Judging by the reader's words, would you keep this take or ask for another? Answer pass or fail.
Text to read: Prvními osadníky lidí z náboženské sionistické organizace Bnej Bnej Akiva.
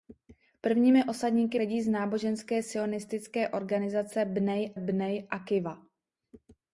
pass